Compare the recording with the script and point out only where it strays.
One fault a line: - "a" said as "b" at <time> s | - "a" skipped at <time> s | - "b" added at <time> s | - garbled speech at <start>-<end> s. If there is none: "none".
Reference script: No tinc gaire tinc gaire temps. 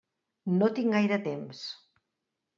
- "tinc gaire" skipped at 1.2 s